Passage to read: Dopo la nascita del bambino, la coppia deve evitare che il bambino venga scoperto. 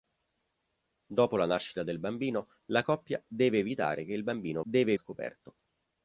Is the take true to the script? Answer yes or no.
no